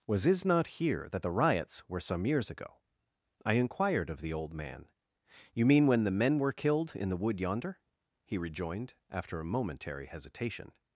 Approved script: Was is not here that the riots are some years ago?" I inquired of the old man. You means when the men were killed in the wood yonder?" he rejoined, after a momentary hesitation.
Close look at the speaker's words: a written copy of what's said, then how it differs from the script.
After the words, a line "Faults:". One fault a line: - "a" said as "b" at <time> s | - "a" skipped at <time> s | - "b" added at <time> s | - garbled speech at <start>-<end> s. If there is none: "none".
Was is not here that the riots were some years ago?" I inquired of the old man. You mean when the men were killed in the wood yonder?" he rejoined, after a momentary hesitation.
Faults:
- "are" said as "were" at 1.9 s
- "means" said as "mean" at 5.7 s